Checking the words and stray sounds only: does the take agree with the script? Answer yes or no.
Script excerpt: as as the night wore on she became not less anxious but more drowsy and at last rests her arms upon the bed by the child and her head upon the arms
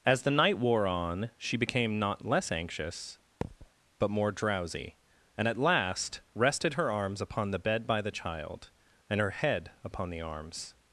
no